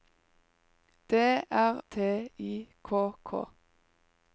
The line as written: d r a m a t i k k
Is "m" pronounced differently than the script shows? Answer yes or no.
yes